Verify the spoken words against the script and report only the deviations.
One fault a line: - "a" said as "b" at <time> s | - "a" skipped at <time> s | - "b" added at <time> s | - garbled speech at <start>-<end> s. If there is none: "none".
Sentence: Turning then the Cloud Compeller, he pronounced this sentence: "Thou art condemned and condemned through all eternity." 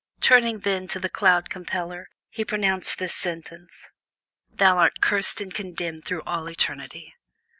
- "to" added at 0.9 s
- "condemned" said as "cursed" at 5.0 s